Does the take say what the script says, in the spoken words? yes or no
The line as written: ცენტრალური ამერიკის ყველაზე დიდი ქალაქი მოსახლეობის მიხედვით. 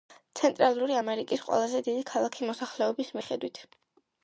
yes